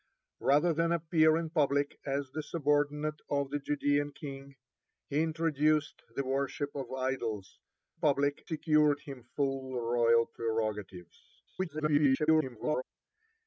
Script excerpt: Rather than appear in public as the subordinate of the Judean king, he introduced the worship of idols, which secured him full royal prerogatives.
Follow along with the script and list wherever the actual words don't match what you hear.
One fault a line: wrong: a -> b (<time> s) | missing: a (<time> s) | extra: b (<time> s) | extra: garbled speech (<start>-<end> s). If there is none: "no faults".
wrong: which -> public (8.0 s)
extra: garbled speech (11.5-12.8 s)